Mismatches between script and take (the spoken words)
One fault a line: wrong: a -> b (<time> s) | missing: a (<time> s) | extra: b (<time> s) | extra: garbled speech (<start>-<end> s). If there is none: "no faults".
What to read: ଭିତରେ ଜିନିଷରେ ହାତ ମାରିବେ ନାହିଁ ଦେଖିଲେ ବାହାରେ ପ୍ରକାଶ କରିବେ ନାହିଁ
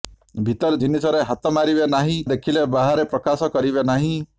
no faults